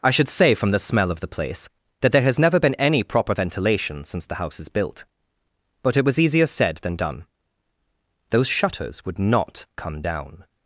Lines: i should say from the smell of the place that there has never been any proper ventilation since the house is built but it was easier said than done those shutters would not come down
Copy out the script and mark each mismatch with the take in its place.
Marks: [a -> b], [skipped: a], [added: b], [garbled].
i should say from the smell of the place that there has never been any proper ventilation since the house is built but it was easier said than done those shutters would not come down